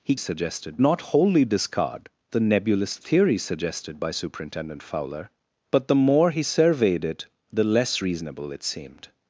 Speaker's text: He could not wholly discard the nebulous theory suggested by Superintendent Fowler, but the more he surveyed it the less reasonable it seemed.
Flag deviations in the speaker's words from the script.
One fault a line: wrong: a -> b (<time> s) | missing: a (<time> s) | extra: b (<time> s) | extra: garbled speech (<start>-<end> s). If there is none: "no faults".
wrong: could -> suggested (0.1 s)